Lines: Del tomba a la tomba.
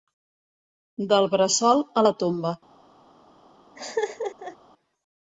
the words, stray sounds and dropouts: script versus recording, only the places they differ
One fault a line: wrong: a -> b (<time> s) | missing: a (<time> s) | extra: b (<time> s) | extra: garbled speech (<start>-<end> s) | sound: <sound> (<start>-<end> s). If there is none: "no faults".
wrong: tomba -> bressol (1.4 s)
sound: laugh (3.8-4.6 s)